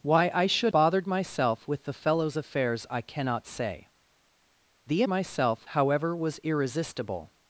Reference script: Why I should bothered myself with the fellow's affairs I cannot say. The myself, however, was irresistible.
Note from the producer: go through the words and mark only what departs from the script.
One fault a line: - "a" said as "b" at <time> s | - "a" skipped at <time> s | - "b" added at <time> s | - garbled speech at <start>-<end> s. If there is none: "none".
none